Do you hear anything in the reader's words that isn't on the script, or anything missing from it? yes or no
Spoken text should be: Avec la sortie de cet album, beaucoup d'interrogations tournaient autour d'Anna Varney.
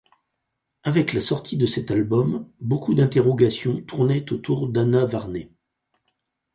no